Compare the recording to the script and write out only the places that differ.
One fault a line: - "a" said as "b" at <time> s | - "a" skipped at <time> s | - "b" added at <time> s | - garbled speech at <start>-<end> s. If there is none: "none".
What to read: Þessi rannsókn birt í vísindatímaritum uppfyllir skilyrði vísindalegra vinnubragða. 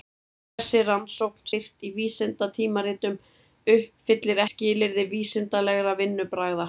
none